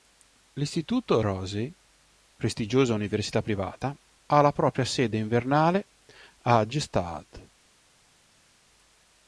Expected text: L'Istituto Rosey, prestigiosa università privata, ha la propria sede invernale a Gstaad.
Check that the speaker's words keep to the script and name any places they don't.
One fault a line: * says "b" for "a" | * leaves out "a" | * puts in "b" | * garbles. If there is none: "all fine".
all fine